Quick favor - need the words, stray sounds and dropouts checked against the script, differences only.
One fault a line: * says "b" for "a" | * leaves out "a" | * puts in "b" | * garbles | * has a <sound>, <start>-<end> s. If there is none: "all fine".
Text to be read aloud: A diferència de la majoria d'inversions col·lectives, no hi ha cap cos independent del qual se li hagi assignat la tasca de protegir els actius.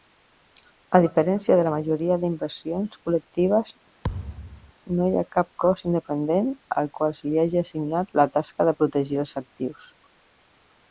* has a thud, 4.0-4.7 s
* says "al" for "del"